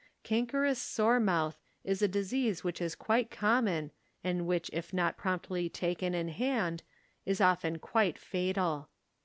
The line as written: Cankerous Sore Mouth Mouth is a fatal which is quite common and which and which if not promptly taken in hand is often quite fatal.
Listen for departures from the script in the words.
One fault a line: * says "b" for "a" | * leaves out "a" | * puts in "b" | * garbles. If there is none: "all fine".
* leaves out "Mouth"
* says "disease" for "fatal"
* leaves out "and which"